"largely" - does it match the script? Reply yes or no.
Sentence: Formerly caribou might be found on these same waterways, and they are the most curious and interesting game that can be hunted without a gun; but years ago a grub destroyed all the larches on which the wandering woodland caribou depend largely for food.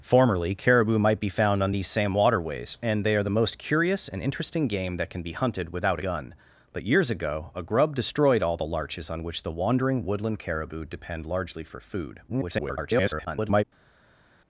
yes